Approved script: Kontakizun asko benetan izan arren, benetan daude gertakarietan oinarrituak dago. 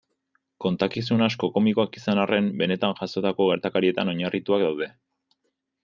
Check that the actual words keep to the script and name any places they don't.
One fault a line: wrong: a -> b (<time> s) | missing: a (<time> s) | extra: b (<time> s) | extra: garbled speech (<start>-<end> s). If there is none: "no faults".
wrong: benetan -> komikoak (1.6 s)
wrong: daude -> jazotako (3.0 s)
wrong: dago -> daude (4.7 s)